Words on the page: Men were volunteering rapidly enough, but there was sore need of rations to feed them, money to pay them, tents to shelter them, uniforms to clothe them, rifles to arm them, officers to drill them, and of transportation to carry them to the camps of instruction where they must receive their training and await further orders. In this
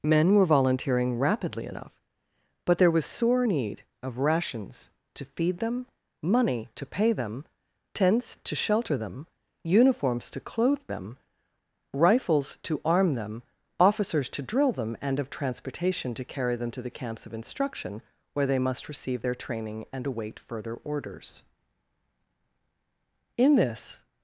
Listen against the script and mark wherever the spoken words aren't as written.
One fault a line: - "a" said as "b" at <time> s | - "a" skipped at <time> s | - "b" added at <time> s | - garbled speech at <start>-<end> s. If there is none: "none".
none